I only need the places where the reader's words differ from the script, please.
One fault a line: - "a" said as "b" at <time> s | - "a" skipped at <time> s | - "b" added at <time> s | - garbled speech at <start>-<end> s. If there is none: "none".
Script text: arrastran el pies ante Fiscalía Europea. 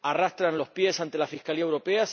- "el" said as "los" at 0.6 s
- "la" added at 1.2 s